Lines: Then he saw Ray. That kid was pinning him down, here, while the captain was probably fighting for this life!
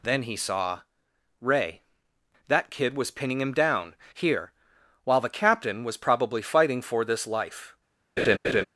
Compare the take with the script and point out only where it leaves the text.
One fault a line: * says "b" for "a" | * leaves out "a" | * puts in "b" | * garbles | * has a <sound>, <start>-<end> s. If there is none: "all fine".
* has a laugh, 8.2-8.6 s